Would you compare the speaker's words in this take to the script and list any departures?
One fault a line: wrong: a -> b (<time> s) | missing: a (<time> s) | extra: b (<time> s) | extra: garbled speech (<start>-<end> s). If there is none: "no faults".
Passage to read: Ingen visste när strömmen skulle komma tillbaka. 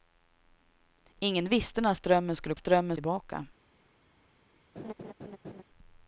wrong: komma -> strömmen (2.5 s)